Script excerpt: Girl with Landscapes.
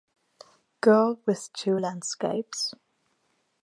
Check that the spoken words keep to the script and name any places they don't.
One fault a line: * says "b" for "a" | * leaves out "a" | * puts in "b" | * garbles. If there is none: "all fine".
* puts in "Two"